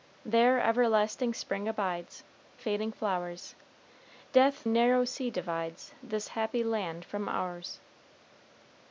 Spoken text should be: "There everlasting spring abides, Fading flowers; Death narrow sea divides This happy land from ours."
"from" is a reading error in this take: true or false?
false